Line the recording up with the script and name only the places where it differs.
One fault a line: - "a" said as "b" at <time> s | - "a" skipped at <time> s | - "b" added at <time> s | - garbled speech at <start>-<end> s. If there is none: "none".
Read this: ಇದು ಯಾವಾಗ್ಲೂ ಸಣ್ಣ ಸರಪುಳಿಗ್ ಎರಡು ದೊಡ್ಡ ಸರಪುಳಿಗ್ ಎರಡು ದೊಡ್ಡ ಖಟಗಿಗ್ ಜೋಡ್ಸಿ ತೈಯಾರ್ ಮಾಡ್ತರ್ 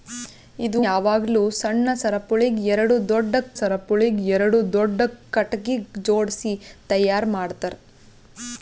none